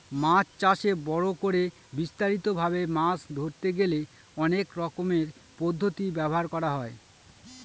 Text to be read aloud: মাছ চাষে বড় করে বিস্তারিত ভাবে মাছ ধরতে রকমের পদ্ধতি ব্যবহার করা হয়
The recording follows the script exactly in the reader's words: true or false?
false